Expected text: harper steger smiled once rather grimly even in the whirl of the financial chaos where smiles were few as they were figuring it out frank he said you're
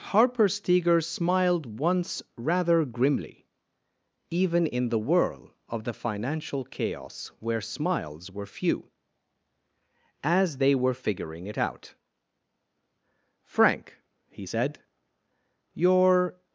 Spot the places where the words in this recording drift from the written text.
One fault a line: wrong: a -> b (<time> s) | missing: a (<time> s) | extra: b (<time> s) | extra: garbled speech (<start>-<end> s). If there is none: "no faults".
no faults